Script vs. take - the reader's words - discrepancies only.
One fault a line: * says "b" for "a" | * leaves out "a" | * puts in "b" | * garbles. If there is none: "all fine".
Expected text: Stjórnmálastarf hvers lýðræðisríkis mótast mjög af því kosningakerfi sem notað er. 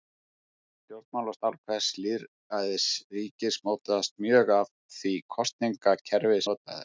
* leaves out "sem"